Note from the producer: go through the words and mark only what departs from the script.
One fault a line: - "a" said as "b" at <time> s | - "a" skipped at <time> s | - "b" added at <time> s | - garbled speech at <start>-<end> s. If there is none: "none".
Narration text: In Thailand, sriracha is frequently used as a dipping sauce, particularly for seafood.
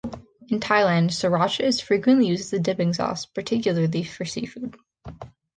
none